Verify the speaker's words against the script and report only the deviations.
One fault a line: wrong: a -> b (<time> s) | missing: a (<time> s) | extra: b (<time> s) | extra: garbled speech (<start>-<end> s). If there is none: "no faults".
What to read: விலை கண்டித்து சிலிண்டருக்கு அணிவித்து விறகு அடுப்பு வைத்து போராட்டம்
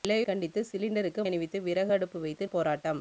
no faults